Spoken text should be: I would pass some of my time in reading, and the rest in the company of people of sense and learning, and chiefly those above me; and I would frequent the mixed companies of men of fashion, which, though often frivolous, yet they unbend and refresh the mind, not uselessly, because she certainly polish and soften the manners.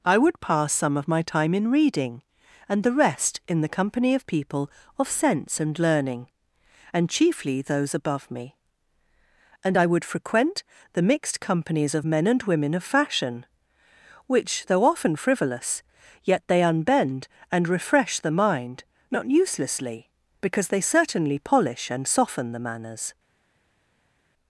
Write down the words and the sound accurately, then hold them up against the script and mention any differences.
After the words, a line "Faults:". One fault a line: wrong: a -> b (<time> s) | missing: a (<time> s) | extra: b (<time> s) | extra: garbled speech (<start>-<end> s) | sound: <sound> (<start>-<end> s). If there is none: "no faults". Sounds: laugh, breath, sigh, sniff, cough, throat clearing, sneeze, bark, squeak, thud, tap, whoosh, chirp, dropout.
I would pass some of my time in reading, and the rest in the company of people of sense and learning, and chiefly those above me; and I would frequent the mixed companies of men and women of fashion, which, though often frivolous, yet they unbend and refresh the mind, not uselessly, because they certainly polish and soften the manners.
Faults:
extra: and women (12.3 s)
wrong: she -> they (20.7 s)